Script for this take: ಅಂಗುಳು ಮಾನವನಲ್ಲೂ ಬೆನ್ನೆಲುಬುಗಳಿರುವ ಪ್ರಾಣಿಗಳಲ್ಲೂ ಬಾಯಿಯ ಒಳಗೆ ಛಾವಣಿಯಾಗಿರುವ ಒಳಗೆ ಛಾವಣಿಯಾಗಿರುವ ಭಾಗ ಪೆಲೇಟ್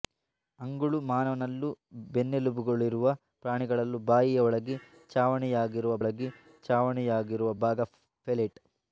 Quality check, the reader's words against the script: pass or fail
pass